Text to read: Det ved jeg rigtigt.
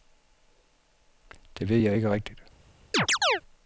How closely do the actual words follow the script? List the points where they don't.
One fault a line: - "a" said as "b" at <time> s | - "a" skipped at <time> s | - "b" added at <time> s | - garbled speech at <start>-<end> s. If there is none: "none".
- "ikke" added at 1.9 s